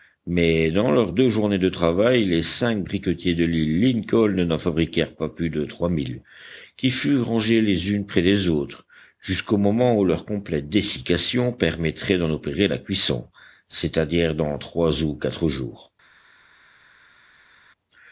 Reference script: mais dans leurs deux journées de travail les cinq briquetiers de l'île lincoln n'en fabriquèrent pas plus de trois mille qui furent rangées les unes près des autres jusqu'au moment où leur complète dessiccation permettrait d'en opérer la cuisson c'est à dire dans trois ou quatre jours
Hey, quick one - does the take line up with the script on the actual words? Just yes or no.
yes